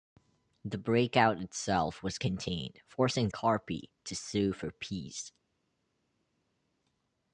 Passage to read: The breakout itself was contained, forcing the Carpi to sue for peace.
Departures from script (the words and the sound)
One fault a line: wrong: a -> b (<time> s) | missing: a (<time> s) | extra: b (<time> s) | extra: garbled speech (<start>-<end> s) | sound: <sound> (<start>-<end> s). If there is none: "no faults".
missing: the (3.3 s)